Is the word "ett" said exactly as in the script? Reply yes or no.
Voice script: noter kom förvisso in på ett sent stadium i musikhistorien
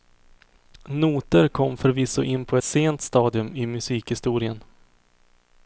no